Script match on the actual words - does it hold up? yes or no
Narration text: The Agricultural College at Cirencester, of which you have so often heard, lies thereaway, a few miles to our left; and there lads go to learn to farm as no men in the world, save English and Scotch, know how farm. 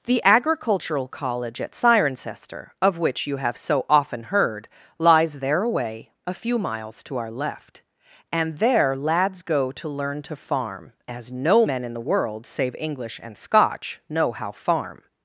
yes